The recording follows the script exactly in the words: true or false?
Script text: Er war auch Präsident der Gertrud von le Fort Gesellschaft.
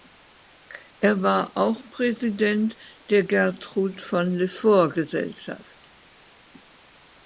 true